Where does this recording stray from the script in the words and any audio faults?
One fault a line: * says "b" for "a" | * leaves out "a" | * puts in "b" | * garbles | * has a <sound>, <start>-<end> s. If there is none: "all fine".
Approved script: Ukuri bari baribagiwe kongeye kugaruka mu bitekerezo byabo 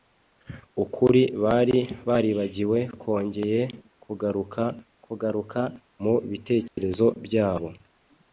* puts in "kugaruka"
* has a dropout, 6.7-6.8 s